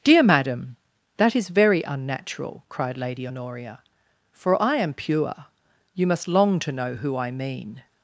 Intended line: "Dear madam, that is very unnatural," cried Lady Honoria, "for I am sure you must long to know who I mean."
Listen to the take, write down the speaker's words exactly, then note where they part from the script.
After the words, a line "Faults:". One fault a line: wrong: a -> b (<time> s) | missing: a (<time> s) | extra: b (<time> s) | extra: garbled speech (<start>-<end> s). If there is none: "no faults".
"Dear madam, that is very unnatural," cried Lady Honoria, "for I am pure you must long to know who I mean."
Faults:
wrong: sure -> pure (4.9 s)